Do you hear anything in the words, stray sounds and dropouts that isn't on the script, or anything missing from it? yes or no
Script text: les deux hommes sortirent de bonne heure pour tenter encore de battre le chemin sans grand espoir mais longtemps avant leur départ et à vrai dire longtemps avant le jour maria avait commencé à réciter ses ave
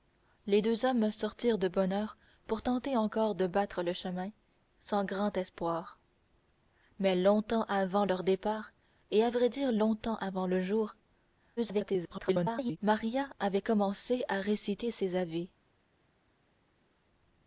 yes